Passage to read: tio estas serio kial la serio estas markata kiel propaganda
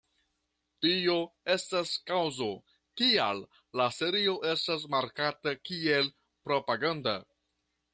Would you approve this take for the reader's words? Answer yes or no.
no